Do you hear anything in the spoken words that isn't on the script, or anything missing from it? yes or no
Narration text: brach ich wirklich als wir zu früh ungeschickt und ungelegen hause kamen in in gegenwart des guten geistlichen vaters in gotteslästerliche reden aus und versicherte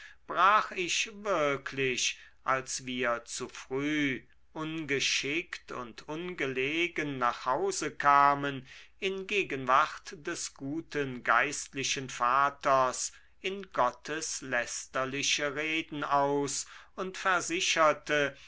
yes